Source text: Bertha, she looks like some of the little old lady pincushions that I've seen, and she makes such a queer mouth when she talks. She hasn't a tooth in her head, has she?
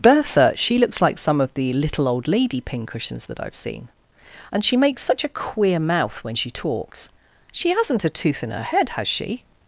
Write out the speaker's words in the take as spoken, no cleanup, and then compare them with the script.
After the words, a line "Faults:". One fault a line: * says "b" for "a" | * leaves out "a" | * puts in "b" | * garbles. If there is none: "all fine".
Bertha, she looks like some of the little old lady pincushions that I've seen, and she makes such a queer mouth when she talks. She hasn't a tooth in her head, has she?
Faults:
all fine